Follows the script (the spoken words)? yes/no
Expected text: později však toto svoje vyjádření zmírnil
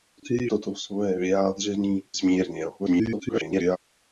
no